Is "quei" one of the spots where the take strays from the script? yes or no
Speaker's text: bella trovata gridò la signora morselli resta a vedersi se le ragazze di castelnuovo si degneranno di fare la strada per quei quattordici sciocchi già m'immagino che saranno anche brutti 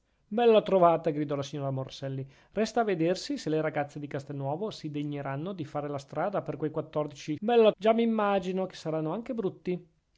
no